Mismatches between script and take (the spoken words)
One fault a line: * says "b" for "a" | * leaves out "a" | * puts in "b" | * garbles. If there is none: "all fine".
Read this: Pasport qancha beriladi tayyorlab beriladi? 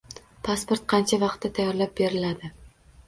* says "vaqtda" for "beriladi"